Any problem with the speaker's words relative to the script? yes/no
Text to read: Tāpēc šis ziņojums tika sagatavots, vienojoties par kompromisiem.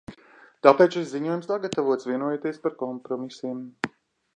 yes